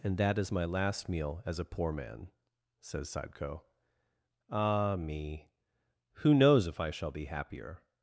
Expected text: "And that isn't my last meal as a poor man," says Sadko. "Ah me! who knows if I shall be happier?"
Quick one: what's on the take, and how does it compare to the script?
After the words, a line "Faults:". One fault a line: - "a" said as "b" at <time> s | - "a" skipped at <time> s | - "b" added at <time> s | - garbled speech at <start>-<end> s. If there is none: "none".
"And that is my last meal as a poor man," says Sadko. "Ah me! who knows if I shall be happier?"
Faults:
- "isn't" said as "is" at 0.4 s